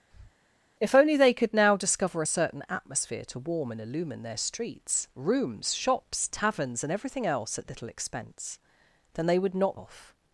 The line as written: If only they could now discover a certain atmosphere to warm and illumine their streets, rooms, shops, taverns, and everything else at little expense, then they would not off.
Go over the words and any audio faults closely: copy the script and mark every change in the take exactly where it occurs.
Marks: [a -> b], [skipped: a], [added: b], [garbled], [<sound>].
[breath] If only they could now discover a certain atmosphere to warm and illumine their streets, rooms, shops, taverns, and everything else at little expense, then they would not off.